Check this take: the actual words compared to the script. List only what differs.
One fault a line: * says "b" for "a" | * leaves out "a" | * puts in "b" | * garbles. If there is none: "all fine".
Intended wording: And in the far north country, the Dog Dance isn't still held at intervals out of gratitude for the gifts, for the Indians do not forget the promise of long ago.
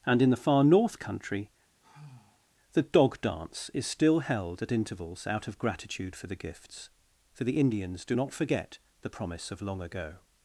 * says "is" for "isn't"